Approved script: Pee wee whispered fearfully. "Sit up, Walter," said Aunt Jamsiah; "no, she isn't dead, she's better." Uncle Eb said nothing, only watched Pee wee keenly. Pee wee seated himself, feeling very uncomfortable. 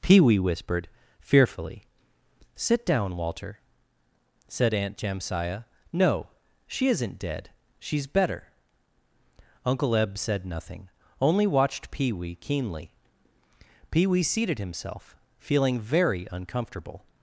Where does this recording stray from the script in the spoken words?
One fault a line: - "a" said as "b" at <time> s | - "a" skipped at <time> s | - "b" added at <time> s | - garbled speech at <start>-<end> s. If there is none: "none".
- "up" said as "down" at 2.9 s